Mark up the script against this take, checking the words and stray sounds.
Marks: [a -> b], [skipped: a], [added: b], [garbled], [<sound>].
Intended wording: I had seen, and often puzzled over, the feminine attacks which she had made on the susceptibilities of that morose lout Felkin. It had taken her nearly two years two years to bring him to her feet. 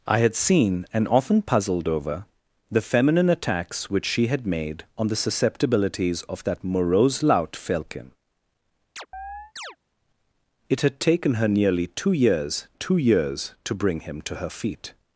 I had seen, and often puzzled over, the feminine attacks which she had made on the susceptibilities of that morose lout Felkin. [chirp] It had taken her nearly two years two years to bring him to her feet.